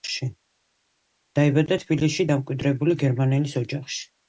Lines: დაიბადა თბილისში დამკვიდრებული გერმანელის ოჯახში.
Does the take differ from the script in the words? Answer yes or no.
no